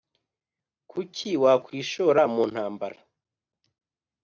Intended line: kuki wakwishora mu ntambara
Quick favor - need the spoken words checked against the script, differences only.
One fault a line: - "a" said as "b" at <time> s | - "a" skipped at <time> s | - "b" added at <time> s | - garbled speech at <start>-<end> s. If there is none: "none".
none